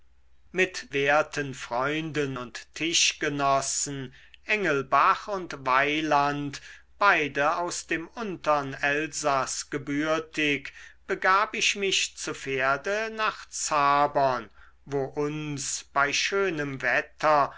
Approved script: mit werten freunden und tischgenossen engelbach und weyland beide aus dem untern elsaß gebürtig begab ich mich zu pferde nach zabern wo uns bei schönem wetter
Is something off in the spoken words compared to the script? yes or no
no